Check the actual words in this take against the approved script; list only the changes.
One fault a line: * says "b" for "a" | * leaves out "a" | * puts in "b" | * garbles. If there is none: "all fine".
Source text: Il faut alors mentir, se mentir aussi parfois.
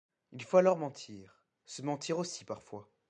all fine